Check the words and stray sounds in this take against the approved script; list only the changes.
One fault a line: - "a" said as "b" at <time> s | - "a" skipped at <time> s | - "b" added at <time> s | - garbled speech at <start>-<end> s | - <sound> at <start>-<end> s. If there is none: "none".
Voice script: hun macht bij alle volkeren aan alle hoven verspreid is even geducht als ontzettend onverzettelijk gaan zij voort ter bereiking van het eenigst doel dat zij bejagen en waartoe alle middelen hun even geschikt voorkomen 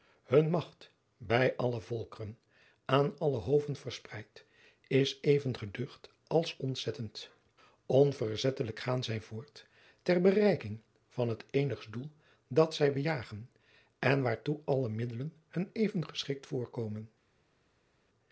none